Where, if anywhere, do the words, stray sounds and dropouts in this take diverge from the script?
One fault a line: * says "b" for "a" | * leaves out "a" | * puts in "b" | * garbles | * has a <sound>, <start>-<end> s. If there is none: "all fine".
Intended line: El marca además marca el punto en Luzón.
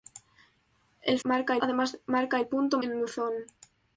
all fine